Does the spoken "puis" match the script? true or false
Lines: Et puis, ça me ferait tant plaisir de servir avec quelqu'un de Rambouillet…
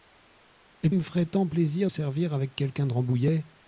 false